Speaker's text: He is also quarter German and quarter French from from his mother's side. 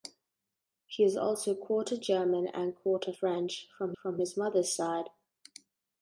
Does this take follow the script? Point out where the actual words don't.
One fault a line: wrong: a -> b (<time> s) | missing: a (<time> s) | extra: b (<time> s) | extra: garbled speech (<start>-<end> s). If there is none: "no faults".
no faults